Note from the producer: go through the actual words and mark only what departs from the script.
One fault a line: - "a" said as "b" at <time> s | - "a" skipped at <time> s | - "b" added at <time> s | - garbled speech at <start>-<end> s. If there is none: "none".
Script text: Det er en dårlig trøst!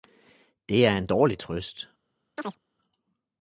none